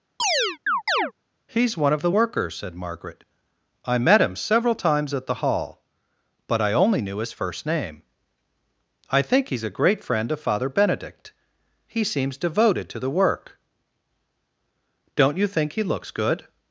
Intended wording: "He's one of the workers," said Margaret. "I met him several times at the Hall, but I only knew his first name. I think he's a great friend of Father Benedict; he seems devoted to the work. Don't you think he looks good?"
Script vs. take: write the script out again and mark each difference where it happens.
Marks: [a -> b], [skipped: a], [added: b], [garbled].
"He's one of the workers," said Margaret. "I met him several times at the Hall, but I only knew his first name. I think he's a great friend of Father Benedict; he seems devoted to the work. Don't you think he looks good?"